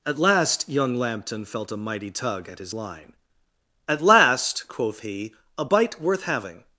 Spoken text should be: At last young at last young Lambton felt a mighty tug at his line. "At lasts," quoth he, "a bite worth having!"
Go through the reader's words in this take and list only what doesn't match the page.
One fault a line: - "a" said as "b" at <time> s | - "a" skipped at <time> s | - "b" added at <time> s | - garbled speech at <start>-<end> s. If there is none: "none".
- "at last young" skipped at 0.9 s
- "lasts" said as "last" at 4.0 s